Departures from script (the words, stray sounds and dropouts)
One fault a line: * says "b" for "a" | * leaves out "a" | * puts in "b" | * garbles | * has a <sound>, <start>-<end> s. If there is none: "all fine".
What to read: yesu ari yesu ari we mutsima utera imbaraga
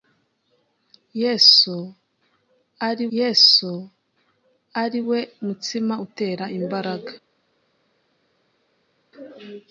all fine